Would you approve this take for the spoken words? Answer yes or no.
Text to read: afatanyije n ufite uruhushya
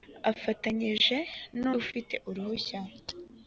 yes